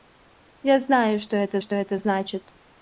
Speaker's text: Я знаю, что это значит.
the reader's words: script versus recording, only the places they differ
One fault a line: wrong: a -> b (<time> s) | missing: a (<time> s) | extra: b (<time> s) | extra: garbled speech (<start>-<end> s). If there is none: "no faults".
extra: что это (1.6 s)